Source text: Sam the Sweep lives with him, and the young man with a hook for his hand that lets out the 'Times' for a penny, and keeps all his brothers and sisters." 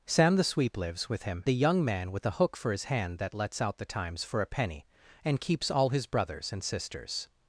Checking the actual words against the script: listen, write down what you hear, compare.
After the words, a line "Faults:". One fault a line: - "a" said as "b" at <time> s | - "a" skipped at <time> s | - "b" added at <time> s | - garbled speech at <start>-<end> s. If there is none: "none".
Sam the Sweep lives with him, the young man with a hook for his hand that lets out the 'Times' for a penny, and keeps all his brothers and sisters."
Faults:
- "and" skipped at 1.4 s